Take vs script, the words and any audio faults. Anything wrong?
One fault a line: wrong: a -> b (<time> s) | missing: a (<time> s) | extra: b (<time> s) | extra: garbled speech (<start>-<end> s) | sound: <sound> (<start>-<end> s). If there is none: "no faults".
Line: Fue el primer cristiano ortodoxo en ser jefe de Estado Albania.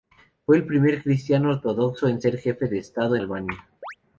sound: chirp (3.8-4.0 s)